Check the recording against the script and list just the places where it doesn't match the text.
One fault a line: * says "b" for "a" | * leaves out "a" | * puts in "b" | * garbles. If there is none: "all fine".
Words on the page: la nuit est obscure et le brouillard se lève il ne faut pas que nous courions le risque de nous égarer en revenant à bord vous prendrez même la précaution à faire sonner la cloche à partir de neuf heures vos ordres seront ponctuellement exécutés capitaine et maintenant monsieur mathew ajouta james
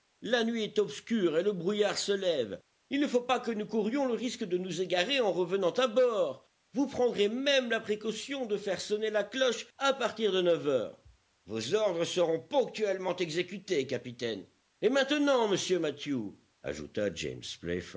* says "de" for "à"